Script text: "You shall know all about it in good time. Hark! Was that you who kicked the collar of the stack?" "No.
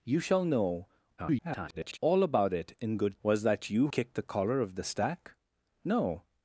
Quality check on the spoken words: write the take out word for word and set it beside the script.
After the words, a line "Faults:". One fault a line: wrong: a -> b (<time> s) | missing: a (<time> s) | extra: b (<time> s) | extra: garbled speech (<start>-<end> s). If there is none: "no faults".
"You shall know [garbled] all about it in good! Was that you kicked the collar of the stack?" "No.
Faults:
extra: garbled speech (1.2-2.0 s)
missing: time Hark (3.2 s)
missing: who (3.9 s)